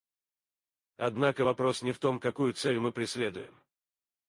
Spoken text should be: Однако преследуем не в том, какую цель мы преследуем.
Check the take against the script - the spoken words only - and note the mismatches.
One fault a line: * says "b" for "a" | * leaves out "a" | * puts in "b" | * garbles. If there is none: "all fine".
* says "вопрос" for "преследуем"